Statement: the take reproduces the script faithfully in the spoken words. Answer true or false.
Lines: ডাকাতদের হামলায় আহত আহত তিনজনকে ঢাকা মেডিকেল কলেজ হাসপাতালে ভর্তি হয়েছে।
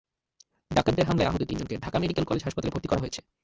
false